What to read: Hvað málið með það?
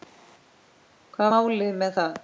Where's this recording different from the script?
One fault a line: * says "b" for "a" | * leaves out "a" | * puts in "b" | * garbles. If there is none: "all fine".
all fine